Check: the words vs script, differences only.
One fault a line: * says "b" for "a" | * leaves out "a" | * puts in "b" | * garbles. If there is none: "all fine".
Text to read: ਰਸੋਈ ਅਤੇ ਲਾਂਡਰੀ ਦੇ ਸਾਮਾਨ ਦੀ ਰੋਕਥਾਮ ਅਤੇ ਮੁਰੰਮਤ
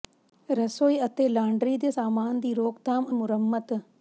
* leaves out "ਅਤੇ"